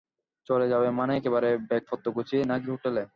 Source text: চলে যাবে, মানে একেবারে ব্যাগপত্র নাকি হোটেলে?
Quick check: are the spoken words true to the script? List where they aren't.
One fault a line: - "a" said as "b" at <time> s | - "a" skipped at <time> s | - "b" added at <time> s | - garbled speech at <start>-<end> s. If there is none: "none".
- "গুছিয়ে" added at 2.1 s